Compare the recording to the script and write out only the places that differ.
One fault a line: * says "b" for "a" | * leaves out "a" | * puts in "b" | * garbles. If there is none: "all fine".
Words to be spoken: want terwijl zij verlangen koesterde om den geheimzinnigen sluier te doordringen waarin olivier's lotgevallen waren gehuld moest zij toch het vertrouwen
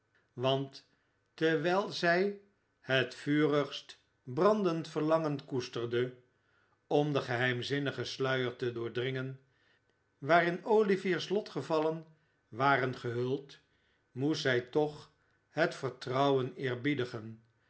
* puts in "het vurigst brandend"